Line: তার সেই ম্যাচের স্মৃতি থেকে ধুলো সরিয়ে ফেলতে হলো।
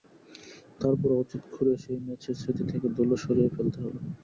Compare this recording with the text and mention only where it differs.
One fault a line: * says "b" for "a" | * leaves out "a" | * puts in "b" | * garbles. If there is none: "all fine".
* puts in "পরও অতীত খুঁড়ে"